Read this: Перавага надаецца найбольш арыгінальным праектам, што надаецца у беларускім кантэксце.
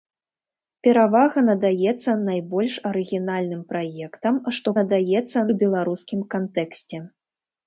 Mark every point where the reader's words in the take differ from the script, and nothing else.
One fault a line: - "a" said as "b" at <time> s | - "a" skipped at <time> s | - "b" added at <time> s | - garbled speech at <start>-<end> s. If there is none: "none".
none